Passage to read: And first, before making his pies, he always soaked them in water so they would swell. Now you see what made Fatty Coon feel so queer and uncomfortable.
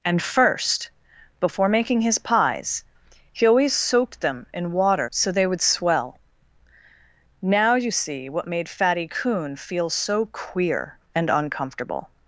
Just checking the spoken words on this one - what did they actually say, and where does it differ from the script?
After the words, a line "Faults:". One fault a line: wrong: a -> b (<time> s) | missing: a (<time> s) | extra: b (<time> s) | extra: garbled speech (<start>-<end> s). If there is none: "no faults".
And first, before making his pies, he always soaked them in water so they would swell. Now you see what made Fatty Coon feel so queer and uncomfortable.
Faults:
no faults